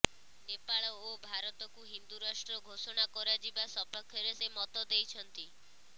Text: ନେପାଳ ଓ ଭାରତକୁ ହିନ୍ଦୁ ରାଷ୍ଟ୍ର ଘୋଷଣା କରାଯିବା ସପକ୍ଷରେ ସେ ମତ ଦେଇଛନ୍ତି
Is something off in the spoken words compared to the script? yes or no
no